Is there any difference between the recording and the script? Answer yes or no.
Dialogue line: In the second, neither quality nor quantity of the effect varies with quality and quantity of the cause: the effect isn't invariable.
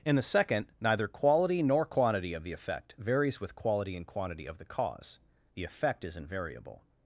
yes